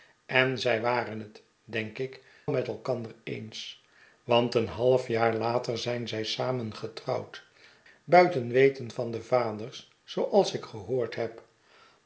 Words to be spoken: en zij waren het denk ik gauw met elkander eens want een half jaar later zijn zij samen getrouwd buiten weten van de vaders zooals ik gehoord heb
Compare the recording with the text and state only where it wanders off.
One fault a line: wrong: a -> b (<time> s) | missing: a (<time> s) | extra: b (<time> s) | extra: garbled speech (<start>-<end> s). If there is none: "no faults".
missing: gauw (2.2 s)